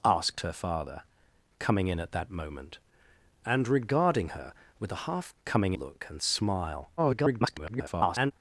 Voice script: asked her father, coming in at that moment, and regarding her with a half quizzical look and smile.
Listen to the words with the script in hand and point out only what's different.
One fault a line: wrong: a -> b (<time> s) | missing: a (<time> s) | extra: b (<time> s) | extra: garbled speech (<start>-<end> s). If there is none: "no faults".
wrong: quizzical -> coming (5.4 s)
extra: garbled speech (7.0-8.3 s)